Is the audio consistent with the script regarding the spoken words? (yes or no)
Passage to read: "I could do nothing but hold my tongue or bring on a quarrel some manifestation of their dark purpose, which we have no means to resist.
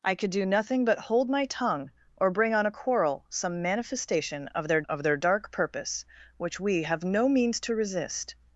no